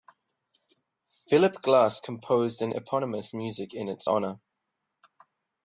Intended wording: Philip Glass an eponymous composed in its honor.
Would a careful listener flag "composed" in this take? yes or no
yes